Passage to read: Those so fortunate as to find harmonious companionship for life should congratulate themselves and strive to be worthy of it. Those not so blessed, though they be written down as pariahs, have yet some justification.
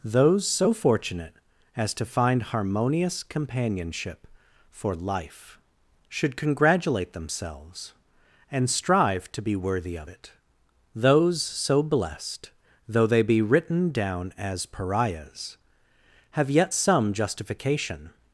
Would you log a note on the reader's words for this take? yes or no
yes